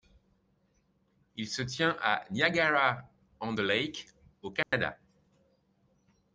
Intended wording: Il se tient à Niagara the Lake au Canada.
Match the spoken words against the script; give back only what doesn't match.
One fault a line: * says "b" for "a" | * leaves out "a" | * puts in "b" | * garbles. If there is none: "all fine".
* puts in "on"